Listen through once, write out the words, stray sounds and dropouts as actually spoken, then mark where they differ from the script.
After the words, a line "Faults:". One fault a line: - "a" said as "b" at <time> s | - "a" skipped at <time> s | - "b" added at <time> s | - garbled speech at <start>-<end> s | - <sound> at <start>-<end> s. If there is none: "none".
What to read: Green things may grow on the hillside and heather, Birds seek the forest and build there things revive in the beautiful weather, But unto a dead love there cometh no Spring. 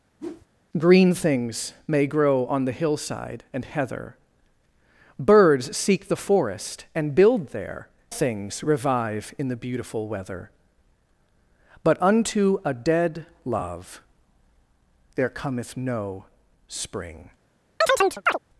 Green things may grow on the hillside and heather, Birds seek the forest and build there things revive in the beautiful weather, But unto a dead love there cometh no Spring.
Faults:
- whoosh at 0.2-0.5 s
- chirp at 17.8-18.4 s